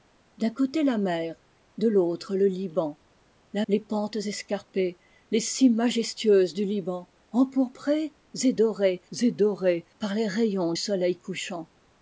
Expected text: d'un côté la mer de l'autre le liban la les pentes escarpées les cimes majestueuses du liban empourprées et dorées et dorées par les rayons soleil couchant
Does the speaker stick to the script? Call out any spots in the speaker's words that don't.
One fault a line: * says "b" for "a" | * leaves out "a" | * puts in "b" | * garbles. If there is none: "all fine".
all fine